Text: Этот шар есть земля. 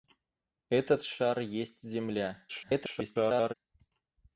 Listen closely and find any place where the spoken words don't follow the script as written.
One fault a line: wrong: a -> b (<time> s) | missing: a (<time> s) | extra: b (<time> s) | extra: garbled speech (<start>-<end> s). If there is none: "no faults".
extra: garbled speech (2.5-3.5 s)